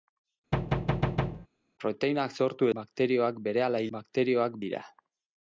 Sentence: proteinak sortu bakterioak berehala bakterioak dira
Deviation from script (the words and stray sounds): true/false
true